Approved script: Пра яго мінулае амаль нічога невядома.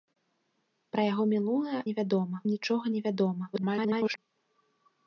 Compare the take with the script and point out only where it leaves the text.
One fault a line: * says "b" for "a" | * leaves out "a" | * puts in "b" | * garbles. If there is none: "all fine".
* says "невядома" for "амаль"
* garbles